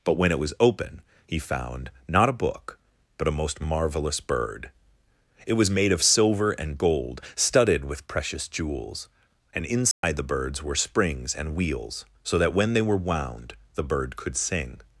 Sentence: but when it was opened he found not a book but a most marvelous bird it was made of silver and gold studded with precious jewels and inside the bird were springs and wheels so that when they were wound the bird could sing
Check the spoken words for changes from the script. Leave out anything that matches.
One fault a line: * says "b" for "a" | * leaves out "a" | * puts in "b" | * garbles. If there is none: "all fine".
* says "open" for "opened"
* says "birds" for "bird"